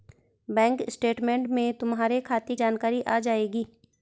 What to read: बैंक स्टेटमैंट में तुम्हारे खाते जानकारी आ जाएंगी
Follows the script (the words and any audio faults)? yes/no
yes